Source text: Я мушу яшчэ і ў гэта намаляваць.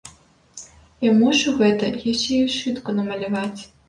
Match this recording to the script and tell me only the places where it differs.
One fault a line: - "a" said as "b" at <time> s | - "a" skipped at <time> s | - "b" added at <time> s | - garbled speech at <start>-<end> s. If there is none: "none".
- "гэта" added at 1.6 s
- "гэта" said as "сшытку" at 2.5 s